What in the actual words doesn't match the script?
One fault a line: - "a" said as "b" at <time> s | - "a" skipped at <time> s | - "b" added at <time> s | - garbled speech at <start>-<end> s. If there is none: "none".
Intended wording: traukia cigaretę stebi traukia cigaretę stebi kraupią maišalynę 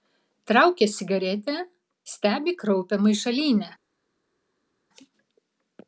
- "traukia cigaretę stebi" skipped at 2.5 s